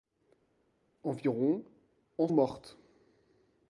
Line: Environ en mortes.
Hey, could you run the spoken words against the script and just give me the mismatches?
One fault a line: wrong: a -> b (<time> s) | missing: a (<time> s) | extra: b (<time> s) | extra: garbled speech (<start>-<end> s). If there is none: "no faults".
no faults